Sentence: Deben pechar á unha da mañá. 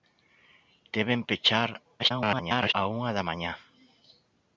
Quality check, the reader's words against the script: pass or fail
fail